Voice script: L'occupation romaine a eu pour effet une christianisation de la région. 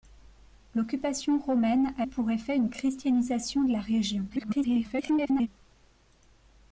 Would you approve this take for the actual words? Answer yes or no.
no